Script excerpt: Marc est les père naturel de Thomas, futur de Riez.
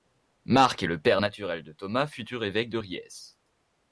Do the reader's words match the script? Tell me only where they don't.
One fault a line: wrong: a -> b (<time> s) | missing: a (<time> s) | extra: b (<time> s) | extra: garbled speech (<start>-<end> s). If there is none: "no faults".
wrong: les -> le (0.8 s)
extra: évêque (2.4 s)